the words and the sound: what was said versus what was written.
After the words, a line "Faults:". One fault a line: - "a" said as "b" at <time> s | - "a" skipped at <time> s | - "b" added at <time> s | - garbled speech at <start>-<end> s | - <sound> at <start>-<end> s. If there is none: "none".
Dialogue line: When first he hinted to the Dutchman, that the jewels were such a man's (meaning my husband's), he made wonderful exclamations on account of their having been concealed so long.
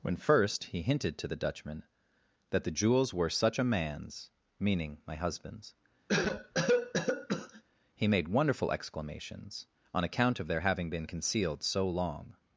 When first he hinted to the Dutchman, that the jewels were such a man's (meaning my husband's), he made wonderful exclamations on account of their having been concealed so long.
Faults:
- cough at 6.1-7.6 s